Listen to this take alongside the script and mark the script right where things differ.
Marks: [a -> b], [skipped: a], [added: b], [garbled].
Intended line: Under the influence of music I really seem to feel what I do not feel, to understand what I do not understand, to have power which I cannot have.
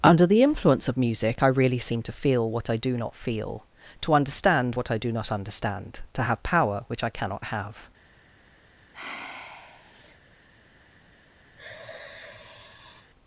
Under the influence of music I really seem to feel what I do not feel, to understand what I do not understand, to have power which I cannot have.